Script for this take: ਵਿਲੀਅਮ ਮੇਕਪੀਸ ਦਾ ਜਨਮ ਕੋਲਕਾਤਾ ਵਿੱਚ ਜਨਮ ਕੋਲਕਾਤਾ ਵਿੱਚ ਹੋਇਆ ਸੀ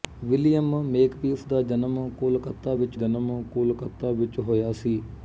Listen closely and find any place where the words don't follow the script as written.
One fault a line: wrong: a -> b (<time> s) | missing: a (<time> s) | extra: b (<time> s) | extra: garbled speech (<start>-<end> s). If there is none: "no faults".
no faults